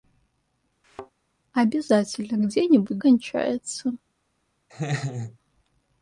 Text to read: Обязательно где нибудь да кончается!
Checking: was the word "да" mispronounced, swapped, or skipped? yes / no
yes